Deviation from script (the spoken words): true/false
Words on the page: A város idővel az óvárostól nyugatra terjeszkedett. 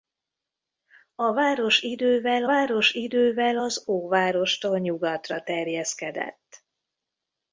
true